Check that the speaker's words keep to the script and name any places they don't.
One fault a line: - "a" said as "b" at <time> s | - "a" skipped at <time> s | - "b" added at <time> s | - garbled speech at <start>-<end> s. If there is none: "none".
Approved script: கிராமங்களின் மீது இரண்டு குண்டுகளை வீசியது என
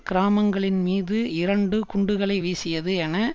none